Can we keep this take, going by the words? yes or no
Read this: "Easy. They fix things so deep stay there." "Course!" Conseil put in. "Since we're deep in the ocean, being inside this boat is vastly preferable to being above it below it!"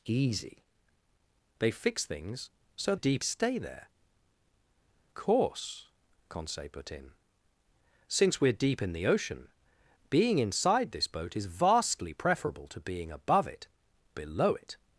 yes